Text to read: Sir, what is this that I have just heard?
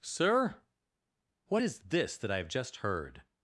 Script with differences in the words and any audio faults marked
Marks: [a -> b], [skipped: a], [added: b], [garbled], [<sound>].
Sir, what is this that I have just heard?